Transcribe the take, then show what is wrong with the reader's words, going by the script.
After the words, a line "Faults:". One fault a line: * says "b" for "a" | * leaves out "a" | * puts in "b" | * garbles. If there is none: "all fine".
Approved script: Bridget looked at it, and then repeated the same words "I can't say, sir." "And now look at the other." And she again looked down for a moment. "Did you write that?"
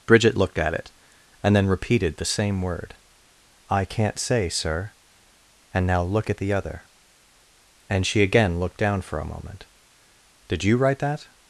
Bridget looked at it, and then repeated the same word "I can't say, sir." "And now look at the other." And she again looked down for a moment. "Did you write that?"
Faults:
* says "word" for "words"